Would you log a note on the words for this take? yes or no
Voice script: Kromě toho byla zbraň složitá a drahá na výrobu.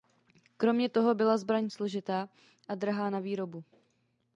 no